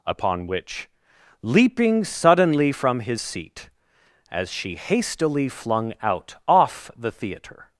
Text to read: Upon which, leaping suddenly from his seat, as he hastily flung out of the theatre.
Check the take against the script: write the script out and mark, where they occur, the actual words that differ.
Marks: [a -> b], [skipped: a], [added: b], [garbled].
Upon which, leaping suddenly from his seat, as [he -> she] hastily flung out [of -> off] the theatre.